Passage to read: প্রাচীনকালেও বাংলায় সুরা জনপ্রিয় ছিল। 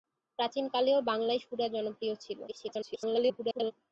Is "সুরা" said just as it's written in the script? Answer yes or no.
yes